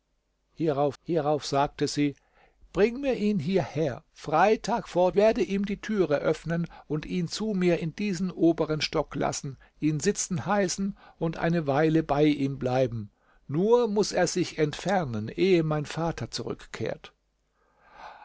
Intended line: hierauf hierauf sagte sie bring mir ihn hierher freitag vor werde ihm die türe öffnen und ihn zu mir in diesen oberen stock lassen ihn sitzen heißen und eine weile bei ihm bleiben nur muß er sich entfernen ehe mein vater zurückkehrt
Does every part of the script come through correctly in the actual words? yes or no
yes